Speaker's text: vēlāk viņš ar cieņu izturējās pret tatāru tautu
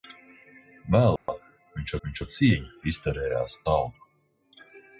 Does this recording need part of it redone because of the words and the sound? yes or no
yes